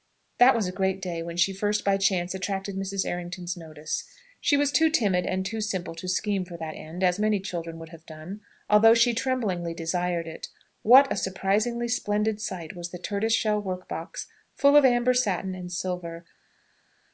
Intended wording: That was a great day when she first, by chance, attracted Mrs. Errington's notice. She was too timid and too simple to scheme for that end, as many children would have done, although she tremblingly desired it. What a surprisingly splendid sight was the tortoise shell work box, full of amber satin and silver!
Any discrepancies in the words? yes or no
no